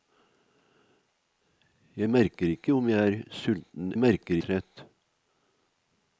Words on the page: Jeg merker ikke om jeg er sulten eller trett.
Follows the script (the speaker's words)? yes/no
no